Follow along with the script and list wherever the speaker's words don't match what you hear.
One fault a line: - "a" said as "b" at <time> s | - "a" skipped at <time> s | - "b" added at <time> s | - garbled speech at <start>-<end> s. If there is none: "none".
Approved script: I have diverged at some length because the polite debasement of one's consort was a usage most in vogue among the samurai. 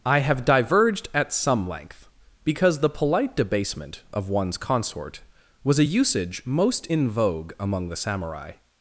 none